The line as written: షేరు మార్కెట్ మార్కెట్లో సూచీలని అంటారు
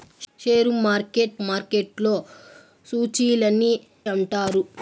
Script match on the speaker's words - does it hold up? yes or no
yes